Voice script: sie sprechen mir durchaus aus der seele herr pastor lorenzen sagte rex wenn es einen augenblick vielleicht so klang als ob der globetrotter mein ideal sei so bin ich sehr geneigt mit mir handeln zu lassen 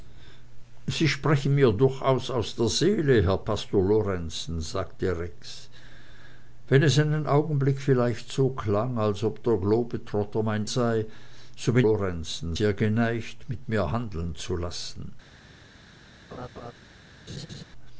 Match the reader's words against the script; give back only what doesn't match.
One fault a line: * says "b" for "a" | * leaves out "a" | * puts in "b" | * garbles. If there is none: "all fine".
* leaves out "ideal"
* says "lorenzen" for "ich"